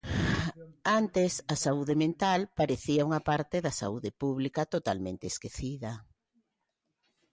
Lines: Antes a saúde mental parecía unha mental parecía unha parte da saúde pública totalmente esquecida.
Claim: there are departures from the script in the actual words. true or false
true